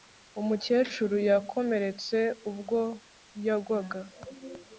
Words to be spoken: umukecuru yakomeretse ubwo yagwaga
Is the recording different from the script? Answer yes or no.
no